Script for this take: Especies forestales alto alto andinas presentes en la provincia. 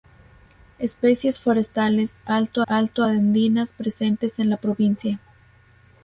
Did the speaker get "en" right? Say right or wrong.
right